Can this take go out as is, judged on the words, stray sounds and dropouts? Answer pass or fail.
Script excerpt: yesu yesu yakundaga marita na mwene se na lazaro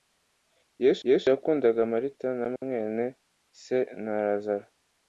pass